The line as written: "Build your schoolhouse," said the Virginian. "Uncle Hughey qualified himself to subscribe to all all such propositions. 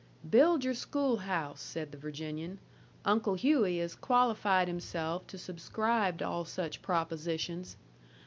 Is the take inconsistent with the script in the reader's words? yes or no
yes